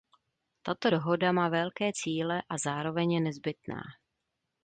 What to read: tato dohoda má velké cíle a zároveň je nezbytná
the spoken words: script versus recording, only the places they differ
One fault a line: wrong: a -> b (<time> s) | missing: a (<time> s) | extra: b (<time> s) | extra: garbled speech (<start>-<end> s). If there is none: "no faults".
no faults